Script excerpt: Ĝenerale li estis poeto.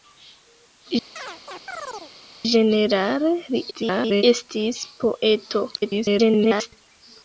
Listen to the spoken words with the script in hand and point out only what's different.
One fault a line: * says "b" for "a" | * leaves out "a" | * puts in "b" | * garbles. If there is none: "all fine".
* garbles
* garbles